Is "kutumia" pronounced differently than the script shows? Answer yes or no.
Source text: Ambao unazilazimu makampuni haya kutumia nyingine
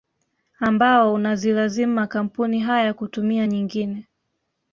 no